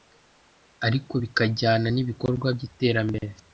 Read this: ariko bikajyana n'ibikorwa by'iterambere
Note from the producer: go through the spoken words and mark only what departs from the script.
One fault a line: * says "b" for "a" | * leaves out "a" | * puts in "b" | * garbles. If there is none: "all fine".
all fine